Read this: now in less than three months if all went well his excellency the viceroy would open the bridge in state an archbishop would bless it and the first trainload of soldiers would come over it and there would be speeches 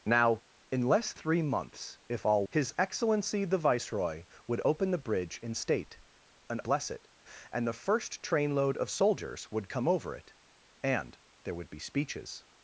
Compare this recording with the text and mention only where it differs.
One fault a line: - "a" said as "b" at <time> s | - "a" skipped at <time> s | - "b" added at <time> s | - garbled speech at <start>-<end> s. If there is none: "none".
- "than" skipped at 1.1 s
- "went well" skipped at 2.5 s
- "archbishop would" skipped at 6.6 s